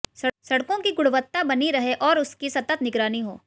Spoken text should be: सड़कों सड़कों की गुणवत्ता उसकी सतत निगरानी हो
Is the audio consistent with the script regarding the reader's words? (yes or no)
no